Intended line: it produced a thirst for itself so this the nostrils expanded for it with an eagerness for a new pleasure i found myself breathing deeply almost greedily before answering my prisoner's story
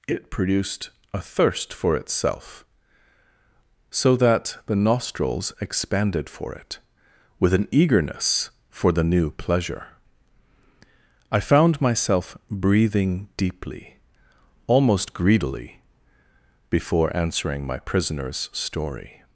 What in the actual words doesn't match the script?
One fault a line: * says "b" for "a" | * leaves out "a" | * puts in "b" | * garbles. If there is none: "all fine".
* says "that" for "this"
* says "the" for "a"